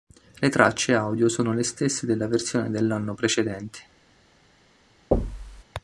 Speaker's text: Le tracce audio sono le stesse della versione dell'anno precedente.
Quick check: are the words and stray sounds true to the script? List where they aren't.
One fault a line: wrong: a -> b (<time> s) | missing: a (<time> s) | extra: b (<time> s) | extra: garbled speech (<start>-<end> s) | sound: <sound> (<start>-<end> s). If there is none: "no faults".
sound: thud (5.1-5.6 s)